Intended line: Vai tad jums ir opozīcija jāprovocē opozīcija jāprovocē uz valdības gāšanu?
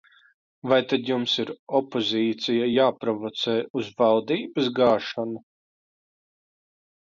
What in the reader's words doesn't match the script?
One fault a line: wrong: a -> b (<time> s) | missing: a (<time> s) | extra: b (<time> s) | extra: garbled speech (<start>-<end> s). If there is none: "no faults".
missing: opozīcija jāprovocē (3.6 s)